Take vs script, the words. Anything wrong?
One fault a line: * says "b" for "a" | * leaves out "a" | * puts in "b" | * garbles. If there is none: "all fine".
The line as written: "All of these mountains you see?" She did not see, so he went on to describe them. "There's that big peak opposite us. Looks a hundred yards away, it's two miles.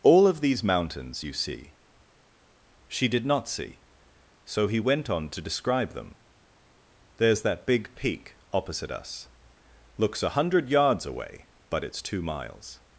* puts in "but"